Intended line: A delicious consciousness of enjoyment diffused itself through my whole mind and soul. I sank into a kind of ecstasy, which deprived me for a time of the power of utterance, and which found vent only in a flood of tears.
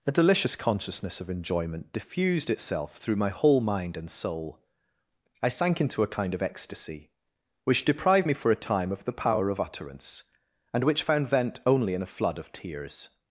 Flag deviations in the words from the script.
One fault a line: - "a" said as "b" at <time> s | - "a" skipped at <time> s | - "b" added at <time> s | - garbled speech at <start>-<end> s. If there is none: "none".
none